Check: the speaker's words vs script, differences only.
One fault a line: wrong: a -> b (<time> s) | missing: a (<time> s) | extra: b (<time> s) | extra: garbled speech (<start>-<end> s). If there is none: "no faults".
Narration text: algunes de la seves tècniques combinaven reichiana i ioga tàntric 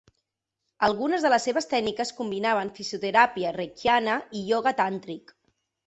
wrong: la -> les (1.3 s)
extra: fisioteràpia (2.8 s)